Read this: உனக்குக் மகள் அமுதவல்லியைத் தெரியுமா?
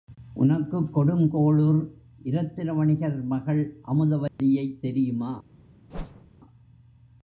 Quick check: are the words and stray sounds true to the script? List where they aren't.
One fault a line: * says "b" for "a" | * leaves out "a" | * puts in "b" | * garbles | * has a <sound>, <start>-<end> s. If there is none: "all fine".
* puts in "கொடுங்கோளுர் இரத்தின வணிகர்"
* has a dropout, 4.3-4.4 s
* has a whoosh, 5.9-6.3 s